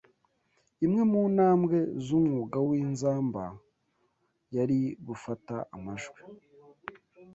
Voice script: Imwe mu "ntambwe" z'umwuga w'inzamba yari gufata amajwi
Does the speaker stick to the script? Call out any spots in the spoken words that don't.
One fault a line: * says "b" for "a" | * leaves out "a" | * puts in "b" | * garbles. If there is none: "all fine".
all fine